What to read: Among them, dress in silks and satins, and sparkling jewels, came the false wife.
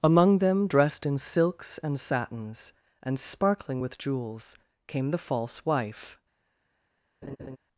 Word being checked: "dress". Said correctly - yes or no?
no